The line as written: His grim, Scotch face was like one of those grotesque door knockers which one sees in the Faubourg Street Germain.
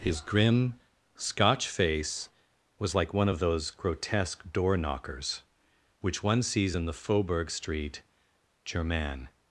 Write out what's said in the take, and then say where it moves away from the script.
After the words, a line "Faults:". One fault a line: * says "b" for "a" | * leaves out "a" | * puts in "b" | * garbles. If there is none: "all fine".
His grim, Scotch face was like one of those grotesque door knockers which one sees in the Faubourg Street Germain.
Faults:
all fine